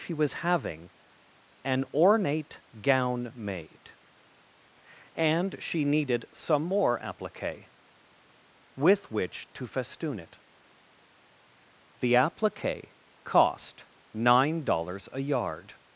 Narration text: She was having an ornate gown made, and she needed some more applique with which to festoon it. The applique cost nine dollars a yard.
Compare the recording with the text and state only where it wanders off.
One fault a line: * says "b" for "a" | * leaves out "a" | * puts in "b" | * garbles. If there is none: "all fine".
all fine